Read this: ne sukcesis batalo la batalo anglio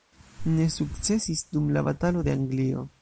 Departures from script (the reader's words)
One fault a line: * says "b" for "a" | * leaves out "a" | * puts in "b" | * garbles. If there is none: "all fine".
* says "dum" for "batalo"
* puts in "de"